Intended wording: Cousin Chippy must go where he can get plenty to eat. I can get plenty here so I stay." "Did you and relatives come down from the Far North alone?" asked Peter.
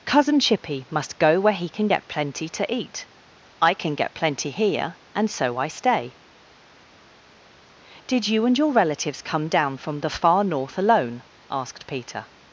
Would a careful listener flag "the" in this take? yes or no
no